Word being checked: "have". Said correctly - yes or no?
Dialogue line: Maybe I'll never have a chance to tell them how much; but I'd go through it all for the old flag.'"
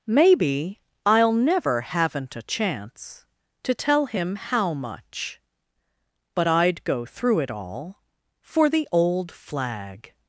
no